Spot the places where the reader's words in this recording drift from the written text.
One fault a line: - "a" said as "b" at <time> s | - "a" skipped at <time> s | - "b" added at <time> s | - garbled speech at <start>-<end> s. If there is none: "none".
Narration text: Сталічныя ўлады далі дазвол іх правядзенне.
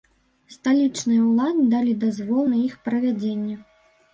- "на" added at 2.5 s